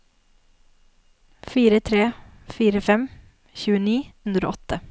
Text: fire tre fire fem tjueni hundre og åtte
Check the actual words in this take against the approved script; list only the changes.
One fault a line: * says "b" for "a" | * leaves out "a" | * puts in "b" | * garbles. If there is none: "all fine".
all fine